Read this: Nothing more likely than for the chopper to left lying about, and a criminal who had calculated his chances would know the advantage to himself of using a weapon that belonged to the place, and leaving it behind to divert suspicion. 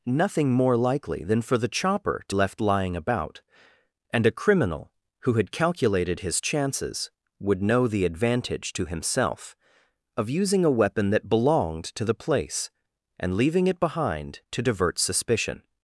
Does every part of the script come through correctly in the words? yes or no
yes